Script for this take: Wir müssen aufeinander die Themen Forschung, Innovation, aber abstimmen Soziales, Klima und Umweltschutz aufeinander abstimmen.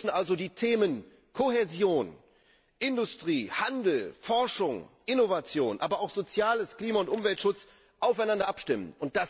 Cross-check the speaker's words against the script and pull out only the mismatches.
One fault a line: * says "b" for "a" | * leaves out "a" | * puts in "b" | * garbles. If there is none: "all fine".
* says "also" for "aufeinander"
* puts in "Kohäsion Industrie Handel"
* says "auch" for "abstimmen"